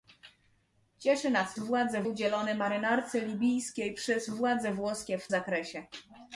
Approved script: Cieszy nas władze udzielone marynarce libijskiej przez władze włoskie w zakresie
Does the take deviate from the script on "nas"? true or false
false